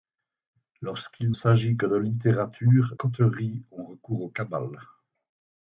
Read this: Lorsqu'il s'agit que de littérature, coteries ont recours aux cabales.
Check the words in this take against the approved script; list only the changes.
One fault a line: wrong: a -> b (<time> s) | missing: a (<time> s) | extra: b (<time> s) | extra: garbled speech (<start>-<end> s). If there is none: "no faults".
no faults